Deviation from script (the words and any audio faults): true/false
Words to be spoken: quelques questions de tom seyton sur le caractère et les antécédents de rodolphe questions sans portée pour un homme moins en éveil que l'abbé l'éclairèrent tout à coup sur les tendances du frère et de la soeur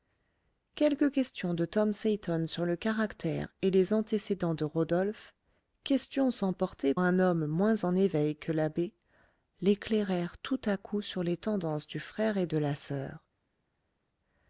true